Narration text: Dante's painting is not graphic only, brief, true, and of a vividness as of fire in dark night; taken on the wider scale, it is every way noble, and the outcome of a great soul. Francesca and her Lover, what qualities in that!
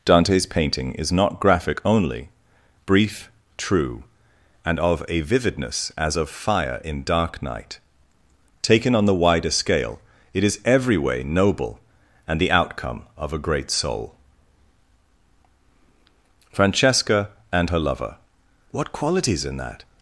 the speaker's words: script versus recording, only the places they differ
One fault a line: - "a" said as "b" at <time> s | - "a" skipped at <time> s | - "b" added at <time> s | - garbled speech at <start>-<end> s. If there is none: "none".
none